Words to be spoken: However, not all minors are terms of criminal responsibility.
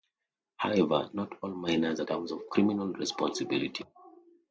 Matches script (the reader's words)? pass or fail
pass